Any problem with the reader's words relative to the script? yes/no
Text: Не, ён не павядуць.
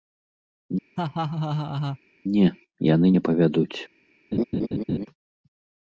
yes